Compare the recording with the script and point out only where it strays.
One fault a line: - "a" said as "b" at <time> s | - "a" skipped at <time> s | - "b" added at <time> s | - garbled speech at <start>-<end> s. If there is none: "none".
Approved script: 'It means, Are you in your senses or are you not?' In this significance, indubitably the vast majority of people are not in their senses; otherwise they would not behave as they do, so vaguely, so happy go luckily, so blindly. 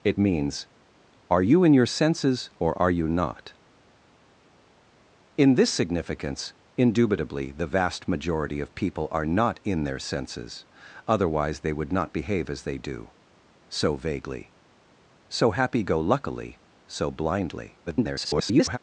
- garbled speech at 17.9-18.8 s